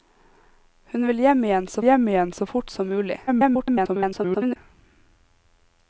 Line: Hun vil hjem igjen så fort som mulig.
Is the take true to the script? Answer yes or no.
no